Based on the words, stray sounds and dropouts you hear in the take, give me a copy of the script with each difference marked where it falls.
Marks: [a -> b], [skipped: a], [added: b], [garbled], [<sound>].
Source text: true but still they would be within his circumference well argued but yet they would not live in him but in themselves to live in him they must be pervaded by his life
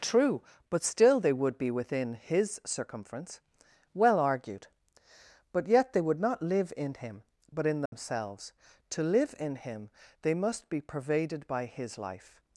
true but still they would be within his circumference well argued but yet they would not live in him but in themselves [dropout] to live in him they must be pervaded by his life